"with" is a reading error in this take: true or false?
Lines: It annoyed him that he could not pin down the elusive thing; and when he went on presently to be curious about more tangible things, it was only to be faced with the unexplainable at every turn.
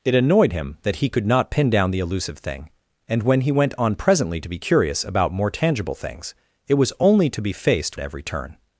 true